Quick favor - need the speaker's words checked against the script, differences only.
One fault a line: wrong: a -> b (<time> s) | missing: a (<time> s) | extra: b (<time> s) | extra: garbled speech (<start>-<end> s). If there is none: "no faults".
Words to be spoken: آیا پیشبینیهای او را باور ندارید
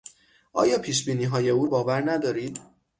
missing: را (1.6 s)